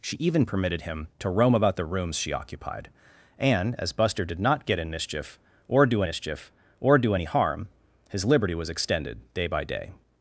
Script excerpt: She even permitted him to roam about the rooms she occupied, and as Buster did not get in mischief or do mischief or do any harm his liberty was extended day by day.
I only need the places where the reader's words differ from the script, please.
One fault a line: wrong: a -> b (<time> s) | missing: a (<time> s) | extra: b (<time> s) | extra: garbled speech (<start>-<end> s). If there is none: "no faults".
no faults